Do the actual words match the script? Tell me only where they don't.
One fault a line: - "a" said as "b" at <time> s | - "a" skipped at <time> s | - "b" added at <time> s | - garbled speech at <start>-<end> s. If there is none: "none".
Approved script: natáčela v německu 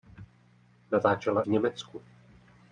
none